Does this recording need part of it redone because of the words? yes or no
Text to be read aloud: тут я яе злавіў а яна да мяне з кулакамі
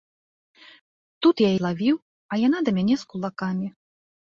yes